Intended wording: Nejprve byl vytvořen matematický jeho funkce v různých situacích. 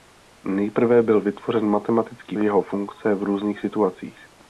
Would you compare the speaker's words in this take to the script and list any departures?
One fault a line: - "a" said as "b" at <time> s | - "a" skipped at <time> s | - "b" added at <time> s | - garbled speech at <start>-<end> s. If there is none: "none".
none